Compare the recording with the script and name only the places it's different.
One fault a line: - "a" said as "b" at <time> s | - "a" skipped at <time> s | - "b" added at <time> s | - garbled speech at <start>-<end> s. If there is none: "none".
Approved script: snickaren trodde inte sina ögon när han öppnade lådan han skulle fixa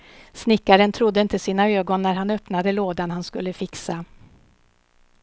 none